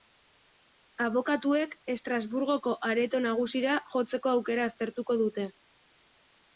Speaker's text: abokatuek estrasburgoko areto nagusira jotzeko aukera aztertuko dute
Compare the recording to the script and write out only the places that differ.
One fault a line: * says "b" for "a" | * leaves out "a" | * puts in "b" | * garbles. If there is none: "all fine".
all fine